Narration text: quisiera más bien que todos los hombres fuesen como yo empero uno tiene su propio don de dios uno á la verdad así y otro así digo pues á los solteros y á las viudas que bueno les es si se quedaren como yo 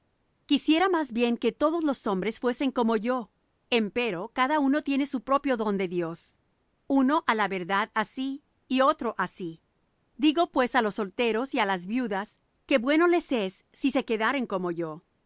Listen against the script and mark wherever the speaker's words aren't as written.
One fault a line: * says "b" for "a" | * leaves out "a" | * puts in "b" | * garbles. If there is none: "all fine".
* puts in "cada"